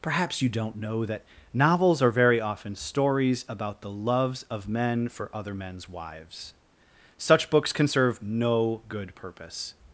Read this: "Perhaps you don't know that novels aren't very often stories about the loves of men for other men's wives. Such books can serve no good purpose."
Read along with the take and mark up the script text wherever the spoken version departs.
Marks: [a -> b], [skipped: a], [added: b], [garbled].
"Perhaps you don't know that novels [aren't -> are] very often stories about the loves of men for other men's wives. Such books can serve no good purpose."